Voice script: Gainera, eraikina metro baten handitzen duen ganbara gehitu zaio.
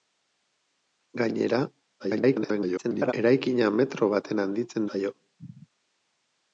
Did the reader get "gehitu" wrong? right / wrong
wrong